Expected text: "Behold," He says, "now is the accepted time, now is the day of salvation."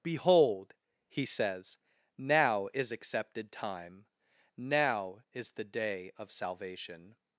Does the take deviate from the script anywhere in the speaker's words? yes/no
yes